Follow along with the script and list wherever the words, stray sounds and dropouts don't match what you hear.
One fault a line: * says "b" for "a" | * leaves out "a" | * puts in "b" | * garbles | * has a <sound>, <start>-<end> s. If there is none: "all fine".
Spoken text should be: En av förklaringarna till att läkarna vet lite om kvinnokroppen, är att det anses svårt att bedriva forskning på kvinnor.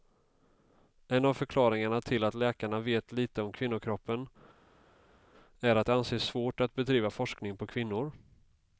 all fine